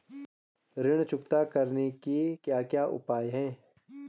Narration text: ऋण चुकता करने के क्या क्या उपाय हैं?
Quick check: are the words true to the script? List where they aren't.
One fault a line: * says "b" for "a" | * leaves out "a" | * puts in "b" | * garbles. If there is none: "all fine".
all fine